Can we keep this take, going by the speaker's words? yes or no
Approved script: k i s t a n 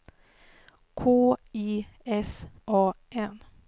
no